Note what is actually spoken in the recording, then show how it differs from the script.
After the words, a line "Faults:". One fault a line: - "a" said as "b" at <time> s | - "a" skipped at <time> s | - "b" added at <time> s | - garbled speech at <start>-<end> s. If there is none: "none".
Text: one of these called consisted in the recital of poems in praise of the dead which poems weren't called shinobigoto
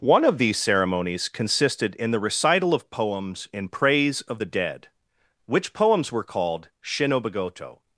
one of these ceremonies consisted in the recital of poems in praise of the dead which poems were called shinobigoto
Faults:
- "called" said as "ceremonies" at 0.6 s
- "weren't" said as "were" at 6.1 s